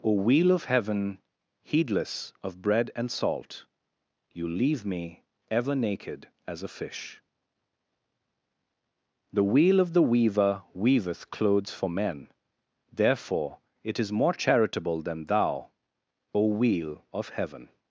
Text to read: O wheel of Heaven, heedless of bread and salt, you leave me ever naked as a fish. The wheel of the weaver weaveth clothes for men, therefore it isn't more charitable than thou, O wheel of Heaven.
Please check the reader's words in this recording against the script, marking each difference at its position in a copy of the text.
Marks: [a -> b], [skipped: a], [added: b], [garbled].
O wheel of Heaven, heedless of bread and salt, you leave me ever naked as a fish. The wheel of the weaver weaveth clothes for men, therefore it [isn't -> is] more charitable than thou, O wheel of Heaven.